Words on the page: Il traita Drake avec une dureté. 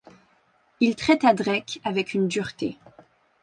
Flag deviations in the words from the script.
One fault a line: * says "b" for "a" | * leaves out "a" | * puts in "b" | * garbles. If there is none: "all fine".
all fine